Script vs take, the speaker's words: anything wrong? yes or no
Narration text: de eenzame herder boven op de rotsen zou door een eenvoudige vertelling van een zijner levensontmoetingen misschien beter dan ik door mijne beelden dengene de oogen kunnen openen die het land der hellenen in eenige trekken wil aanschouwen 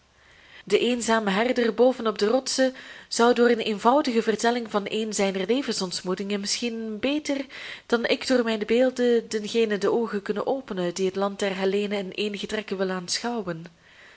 no